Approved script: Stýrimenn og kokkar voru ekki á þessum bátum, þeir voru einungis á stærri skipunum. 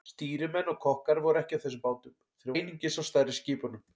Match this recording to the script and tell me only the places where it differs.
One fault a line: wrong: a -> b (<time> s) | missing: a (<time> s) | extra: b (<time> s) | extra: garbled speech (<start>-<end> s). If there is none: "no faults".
missing: voru (2.6 s)